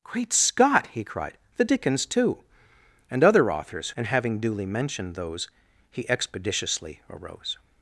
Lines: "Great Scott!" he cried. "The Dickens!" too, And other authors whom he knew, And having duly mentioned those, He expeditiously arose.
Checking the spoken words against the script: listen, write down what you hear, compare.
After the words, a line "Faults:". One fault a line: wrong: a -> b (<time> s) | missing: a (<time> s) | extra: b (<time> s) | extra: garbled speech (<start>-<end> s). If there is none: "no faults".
"Great Scott!" he cried. "The Dickens!" too, And other authors And having duly mentioned those, He expeditiously arose.
Faults:
missing: whom he knew (3.9 s)